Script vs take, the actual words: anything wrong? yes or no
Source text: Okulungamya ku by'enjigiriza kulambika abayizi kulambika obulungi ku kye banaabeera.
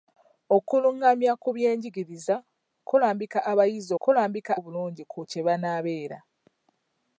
no